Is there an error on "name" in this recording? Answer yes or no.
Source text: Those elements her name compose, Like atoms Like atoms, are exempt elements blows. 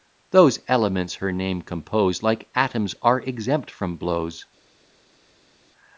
no